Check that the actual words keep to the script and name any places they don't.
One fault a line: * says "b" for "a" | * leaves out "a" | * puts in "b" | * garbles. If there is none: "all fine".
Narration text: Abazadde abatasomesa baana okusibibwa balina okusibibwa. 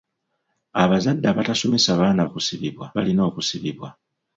all fine